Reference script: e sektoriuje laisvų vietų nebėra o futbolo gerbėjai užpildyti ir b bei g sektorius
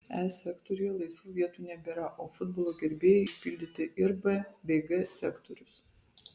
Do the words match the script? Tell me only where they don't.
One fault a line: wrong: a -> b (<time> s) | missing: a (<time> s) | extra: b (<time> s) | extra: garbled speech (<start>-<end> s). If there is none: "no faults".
no faults